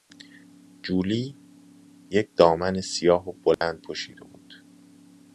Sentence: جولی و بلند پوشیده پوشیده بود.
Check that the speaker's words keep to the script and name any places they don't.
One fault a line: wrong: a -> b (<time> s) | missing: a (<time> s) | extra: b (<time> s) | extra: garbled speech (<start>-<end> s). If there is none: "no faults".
extra: یک دامن سیاه (2.1 s)
missing: پوشیده (4.2 s)